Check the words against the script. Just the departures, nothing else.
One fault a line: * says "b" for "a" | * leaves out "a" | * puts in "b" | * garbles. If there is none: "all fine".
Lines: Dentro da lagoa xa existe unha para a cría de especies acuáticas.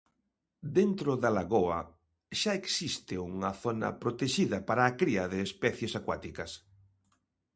* puts in "zona protexida"